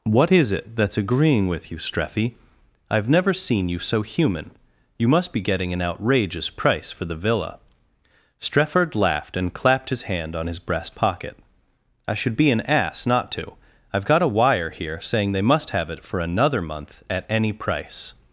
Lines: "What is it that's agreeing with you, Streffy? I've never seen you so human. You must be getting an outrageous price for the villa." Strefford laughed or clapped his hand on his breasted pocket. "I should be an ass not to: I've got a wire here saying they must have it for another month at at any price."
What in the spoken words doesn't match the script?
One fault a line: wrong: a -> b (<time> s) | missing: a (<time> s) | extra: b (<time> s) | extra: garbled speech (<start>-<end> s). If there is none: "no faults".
wrong: or -> and (9.4 s)
wrong: breasted -> breast (10.6 s)
missing: at (17.2 s)